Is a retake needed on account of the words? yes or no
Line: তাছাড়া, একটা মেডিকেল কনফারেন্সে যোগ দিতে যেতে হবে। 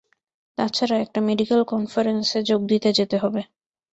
no